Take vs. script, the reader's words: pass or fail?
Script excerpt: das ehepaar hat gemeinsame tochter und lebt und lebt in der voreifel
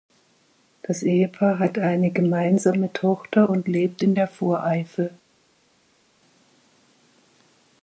fail